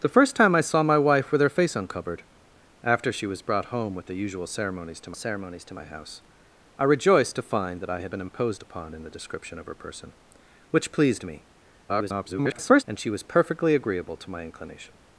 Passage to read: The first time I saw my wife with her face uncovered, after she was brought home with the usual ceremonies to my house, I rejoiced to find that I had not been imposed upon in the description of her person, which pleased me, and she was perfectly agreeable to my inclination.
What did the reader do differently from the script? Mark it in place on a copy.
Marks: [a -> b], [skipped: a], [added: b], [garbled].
The first time I saw my wife with her face uncovered, after she was brought home with the usual ceremonies to [added: ceremonies to] my house, I rejoiced to find that I had [skipped: not] been imposed upon in the description of her person, which pleased me, [garbled] and she was perfectly agreeable to my inclination.